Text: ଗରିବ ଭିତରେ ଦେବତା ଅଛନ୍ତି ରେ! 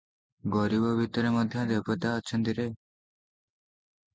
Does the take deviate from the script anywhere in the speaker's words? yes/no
yes